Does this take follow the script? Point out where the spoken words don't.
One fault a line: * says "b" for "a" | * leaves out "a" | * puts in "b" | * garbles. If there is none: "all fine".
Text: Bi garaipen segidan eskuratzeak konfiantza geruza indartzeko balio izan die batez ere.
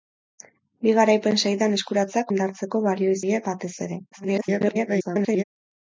* leaves out "konfiantza geruza"
* leaves out "izan"
* garbles